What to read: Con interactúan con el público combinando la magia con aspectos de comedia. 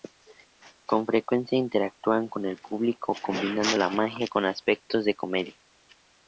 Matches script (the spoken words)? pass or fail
fail